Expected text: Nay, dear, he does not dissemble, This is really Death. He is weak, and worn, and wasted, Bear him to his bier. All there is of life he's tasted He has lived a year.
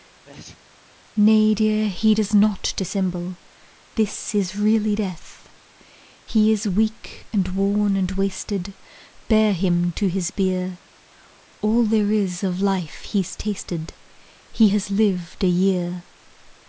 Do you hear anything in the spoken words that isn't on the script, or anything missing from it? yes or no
no